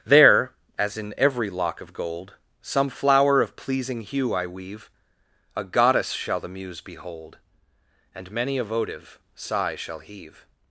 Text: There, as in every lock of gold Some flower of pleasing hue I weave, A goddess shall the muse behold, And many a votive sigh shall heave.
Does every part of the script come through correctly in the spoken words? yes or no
yes